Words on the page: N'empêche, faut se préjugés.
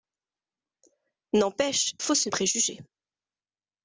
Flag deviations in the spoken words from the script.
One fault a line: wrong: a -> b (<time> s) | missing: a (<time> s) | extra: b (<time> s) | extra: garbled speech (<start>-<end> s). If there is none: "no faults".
no faults